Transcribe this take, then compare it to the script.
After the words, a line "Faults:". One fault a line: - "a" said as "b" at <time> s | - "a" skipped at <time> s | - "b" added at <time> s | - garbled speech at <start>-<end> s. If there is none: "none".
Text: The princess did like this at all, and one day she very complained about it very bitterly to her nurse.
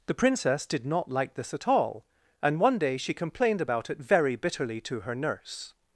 The princess did not like this at all, and one day she complained about it very bitterly to her nurse.
Faults:
- "not" added at 0.8 s
- "very" skipped at 3.1 s